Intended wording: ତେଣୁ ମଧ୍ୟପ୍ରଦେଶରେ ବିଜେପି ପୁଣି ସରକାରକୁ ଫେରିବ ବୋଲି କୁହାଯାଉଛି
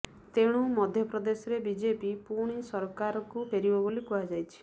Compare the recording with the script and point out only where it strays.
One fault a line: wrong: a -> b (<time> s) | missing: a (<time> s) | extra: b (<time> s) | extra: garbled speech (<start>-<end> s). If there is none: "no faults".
no faults